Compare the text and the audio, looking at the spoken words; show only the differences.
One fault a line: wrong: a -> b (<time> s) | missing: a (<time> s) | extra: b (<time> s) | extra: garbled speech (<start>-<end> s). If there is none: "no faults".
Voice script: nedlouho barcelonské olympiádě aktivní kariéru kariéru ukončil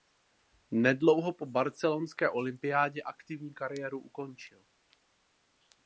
extra: po (1.3 s)
missing: kariéru (4.0 s)